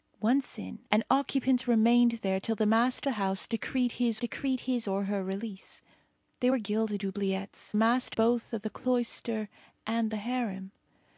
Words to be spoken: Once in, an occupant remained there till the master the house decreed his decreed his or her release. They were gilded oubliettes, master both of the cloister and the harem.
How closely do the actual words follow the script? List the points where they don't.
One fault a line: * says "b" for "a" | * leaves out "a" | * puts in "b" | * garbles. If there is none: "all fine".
all fine